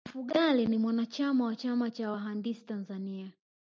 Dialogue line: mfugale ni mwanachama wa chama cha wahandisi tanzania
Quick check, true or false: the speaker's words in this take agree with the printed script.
true